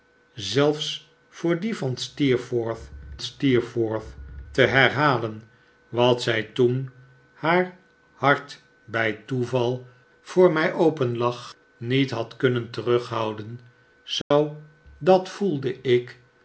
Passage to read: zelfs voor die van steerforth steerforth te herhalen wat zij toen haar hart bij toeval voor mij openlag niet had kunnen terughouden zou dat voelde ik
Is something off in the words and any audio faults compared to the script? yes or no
yes